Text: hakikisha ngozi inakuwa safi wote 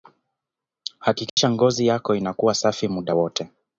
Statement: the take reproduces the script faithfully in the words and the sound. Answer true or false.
false